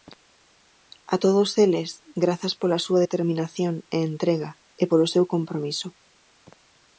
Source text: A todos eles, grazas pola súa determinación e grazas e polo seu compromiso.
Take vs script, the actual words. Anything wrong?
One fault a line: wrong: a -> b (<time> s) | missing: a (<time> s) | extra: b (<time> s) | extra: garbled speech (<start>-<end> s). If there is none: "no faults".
wrong: grazas -> entrega (4.1 s)